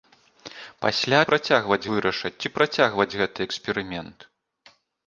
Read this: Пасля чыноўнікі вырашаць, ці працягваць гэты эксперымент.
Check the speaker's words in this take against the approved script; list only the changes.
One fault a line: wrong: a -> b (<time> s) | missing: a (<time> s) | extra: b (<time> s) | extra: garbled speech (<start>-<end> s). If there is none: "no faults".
wrong: чыноўнікі -> працягваць (1.3 s)